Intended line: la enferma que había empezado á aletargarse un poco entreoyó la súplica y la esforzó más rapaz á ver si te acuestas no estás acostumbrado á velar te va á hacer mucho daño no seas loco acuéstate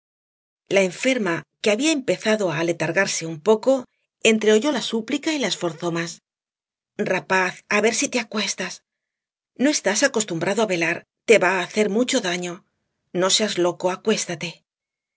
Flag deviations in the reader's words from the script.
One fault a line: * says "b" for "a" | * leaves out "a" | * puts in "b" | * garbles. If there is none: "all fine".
all fine